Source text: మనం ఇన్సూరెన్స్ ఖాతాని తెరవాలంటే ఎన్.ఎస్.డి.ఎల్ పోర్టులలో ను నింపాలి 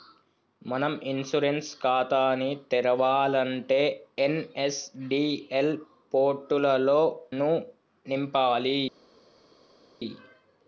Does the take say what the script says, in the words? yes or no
yes